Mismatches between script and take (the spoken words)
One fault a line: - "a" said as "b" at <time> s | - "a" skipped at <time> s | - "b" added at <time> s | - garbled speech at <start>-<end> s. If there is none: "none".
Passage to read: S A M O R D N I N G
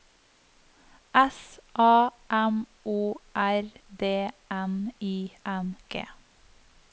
none